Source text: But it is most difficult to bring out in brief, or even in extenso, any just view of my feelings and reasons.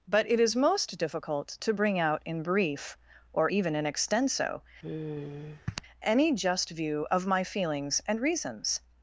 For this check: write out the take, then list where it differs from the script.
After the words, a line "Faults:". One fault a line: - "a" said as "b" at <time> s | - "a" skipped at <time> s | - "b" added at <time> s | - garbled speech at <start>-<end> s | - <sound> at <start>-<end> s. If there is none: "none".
But it is most difficult to bring out in brief, or even in extenso, any just view of my feelings and reasons.
Faults:
- sigh at 4.8-5.8 s